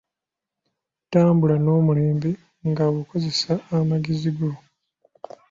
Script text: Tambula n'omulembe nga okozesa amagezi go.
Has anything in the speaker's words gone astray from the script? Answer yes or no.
no